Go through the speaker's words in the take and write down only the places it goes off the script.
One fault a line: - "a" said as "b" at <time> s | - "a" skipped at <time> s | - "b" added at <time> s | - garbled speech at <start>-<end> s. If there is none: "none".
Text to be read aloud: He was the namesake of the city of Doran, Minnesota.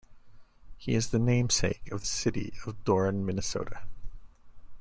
- "was" said as "is" at 0.9 s